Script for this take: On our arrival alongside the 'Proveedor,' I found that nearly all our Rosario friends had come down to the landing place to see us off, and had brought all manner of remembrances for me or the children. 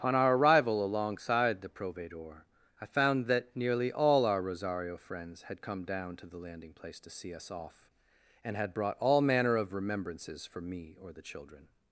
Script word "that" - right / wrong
right